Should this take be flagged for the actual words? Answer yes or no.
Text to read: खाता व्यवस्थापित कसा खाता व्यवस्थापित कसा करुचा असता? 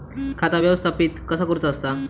yes